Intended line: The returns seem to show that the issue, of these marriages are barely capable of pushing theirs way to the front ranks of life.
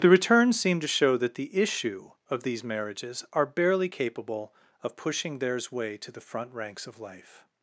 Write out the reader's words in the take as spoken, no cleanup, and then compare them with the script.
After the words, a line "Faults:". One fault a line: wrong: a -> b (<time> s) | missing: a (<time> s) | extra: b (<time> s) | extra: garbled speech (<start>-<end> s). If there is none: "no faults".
The returns seem to show that the issue, of these marriages are barely capable of pushing theirs way to the front ranks of life.
Faults:
no faults